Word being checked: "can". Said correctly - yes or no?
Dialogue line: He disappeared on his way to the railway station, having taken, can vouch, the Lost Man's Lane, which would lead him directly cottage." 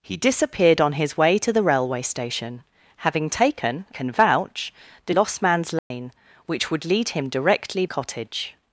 yes